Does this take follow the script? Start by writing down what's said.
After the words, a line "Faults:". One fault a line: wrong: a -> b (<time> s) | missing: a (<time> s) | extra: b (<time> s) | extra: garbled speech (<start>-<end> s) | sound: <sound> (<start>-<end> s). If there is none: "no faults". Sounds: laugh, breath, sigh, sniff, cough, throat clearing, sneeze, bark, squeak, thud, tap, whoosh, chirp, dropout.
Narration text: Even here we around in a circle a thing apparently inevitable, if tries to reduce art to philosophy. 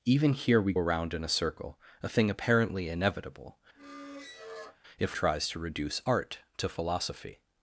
Even here we around in a circle a thing apparently inevitable, if tries to reduce art to philosophy.
Faults:
sound: squeak (3.8-4.8 s)